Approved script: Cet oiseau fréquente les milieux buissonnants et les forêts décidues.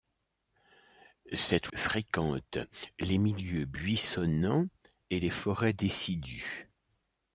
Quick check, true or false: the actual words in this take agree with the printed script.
false